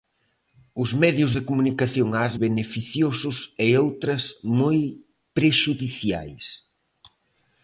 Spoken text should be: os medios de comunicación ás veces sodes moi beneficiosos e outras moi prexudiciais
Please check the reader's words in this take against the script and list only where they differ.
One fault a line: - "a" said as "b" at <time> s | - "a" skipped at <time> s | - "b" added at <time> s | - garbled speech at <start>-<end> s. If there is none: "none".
- "veces sodes moi" skipped at 2.3 s